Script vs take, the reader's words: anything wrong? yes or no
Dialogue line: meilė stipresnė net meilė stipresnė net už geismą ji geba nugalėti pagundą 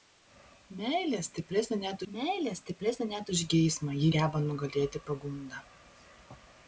no